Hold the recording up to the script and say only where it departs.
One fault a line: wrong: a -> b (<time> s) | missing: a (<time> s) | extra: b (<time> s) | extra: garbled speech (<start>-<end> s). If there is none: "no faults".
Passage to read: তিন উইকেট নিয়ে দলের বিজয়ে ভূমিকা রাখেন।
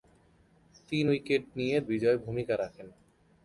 missing: দলের (1.8 s)